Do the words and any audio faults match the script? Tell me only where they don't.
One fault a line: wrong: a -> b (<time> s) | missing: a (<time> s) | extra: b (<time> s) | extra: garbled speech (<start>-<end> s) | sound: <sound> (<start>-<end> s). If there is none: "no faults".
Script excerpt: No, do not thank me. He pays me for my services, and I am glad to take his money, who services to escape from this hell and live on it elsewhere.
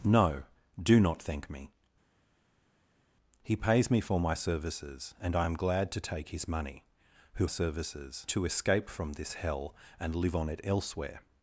no faults